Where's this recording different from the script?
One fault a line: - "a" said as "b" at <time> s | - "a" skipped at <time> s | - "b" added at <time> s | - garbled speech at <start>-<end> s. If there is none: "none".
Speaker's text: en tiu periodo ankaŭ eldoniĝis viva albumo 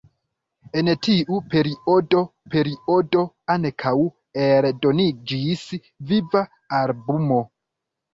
- "periodo" added at 2.5 s